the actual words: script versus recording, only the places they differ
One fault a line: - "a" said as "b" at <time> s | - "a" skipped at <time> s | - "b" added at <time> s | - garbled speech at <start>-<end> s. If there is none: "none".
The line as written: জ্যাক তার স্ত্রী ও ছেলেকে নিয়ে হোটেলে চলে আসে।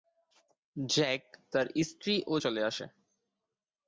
- "ছেলেকে নিয়ে হোটেলে" skipped at 2.4 s